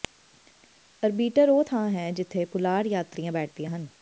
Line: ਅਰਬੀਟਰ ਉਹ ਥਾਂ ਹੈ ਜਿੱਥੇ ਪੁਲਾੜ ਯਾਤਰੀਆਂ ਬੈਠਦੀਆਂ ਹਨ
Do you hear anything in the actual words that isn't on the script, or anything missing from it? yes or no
no